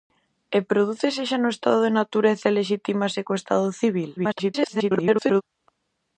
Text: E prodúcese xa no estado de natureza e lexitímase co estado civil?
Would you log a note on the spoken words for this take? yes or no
yes